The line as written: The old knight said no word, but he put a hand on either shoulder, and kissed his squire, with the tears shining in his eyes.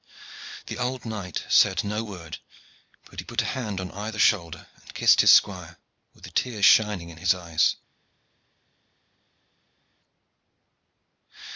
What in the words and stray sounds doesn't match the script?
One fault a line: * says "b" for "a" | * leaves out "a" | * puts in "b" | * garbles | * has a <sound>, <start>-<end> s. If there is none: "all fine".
all fine